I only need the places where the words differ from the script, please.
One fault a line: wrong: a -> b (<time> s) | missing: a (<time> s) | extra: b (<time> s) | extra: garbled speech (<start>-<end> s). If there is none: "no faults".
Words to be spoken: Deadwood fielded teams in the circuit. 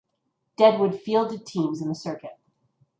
no faults